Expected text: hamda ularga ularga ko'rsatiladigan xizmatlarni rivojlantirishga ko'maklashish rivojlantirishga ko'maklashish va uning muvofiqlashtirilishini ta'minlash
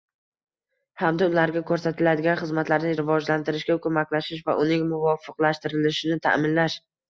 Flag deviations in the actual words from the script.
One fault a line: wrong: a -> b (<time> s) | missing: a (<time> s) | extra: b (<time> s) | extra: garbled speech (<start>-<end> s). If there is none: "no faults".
missing: ularga (1.6 s)
missing: rivojlantirishga ko'maklashish (4.5 s)